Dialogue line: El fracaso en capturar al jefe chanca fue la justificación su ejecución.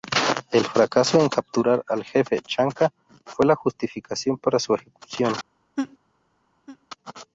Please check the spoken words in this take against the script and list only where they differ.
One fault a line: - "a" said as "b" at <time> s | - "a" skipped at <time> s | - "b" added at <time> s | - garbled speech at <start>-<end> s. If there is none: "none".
- "para" added at 4.4 s